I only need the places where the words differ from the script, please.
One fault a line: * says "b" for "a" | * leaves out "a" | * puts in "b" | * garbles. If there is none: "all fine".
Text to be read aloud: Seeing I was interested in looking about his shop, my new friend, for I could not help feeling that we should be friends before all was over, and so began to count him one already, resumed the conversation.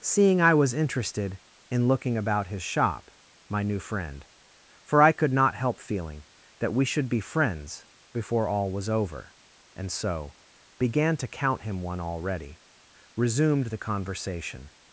all fine